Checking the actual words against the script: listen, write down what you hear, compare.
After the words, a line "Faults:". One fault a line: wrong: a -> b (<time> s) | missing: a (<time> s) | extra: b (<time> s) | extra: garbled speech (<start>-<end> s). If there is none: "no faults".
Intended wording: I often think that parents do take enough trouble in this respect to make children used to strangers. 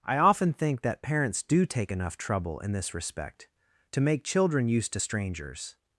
I often think that parents do take enough trouble in this respect to make children used to strangers.
Faults:
no faults